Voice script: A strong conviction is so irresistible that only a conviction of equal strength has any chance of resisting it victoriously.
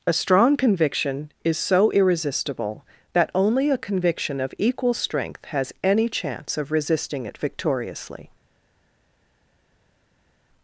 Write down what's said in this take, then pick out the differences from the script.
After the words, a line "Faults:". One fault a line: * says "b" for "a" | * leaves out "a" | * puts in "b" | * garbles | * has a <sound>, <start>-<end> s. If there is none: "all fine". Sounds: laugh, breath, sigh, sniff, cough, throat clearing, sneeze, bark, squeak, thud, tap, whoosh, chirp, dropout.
A strong conviction is so irresistible that only a conviction of equal strength has any chance of resisting it victoriously.
Faults:
all fine